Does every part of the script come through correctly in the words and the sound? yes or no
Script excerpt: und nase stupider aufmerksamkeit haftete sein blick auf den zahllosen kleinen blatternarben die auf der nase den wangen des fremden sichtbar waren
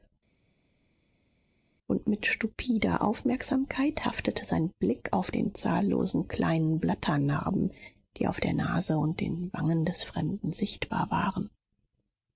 no